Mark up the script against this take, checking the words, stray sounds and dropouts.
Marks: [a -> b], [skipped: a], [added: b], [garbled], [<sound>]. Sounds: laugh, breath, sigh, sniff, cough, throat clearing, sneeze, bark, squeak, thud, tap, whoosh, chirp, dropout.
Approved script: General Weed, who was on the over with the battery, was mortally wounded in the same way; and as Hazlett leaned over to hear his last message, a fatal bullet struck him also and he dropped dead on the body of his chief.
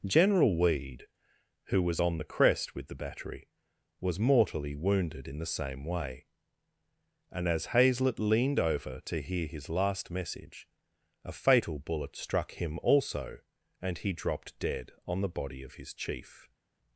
General Weed, who was on the [over -> crest] with the battery, was mortally wounded in the same way; and as Hazlett leaned over to hear his last message, a fatal bullet struck him also and he dropped dead on the body of his chief.